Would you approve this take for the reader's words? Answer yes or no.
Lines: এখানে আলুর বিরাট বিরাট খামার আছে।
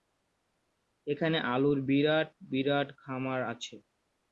yes